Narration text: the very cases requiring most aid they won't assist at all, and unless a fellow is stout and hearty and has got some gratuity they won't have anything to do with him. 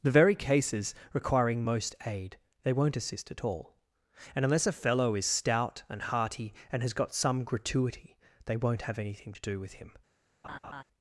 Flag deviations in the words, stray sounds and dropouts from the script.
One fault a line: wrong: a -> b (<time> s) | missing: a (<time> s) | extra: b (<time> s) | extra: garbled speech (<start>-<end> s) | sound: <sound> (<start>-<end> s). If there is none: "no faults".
sound: laugh (10.4-10.8 s)